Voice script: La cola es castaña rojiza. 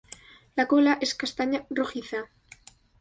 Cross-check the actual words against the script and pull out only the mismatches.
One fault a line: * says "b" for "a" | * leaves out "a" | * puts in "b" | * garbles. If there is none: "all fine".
all fine